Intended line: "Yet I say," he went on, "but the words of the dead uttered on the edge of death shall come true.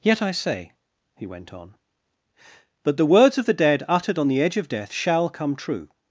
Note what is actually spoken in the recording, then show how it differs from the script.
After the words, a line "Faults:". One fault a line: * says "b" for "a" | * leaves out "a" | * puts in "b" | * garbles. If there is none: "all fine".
"Yet I say," he went on, "but the words of the dead uttered on the edge of death shall come true.
Faults:
all fine